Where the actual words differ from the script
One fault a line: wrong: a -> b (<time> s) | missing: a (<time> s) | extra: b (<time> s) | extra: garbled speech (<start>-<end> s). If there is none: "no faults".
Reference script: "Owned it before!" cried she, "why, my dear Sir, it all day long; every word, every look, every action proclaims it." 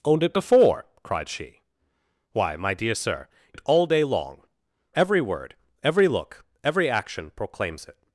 no faults